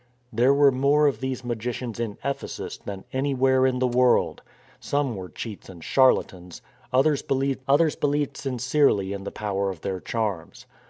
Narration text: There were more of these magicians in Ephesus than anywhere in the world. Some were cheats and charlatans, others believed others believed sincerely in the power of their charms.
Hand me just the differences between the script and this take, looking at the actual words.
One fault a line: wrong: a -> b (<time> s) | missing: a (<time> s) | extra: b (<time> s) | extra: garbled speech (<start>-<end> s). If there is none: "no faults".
no faults